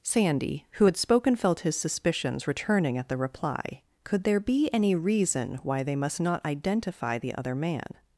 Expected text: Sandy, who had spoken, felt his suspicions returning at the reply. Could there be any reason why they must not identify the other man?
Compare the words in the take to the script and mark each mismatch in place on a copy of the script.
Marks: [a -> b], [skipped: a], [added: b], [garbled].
Sandy, who had spoken, felt his suspicions returning at the reply. Could there be any reason why they must not identify the other man?